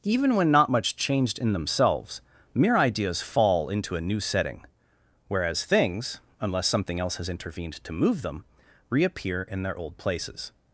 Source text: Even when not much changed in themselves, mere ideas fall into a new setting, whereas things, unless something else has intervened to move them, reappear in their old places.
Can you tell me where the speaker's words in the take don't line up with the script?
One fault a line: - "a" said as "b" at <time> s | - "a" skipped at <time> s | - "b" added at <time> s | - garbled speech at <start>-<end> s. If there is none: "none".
none